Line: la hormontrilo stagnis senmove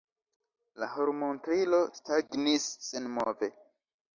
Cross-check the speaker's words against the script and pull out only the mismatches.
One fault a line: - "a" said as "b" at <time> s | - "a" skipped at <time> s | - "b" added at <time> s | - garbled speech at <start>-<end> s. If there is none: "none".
none